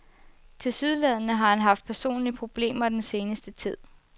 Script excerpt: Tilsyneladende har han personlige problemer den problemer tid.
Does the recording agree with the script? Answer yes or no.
no